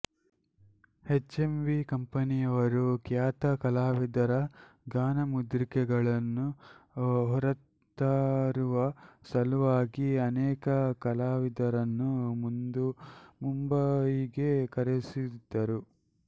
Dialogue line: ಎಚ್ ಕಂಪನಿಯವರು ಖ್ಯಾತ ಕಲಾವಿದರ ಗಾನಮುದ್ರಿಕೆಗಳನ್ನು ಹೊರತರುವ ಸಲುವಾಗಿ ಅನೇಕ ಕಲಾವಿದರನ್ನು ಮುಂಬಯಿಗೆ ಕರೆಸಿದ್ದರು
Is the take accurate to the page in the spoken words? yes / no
no